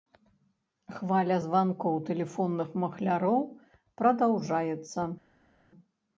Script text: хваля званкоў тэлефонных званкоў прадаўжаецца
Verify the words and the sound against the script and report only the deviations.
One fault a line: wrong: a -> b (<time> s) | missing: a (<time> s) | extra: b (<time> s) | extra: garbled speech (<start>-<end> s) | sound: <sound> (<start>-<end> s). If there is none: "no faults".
wrong: званкоў -> махляроў (2.8 s)